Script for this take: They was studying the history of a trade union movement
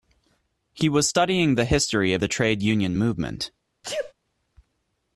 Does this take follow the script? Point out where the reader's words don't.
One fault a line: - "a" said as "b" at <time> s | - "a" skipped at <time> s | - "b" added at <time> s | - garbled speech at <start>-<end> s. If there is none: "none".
- "They" said as "He" at 0.7 s
- "a" said as "the" at 2.2 s